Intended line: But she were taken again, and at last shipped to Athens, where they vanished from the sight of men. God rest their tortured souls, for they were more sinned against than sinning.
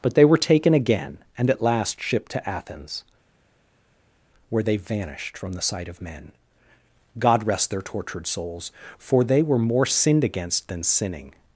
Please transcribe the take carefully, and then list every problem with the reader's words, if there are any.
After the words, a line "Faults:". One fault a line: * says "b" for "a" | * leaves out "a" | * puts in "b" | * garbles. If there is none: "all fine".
But they were taken again, and at last shipped to Athens, where they vanished from the sight of men. God rest their tortured souls, for they were more sinned against than sinning.
Faults:
* says "they" for "she"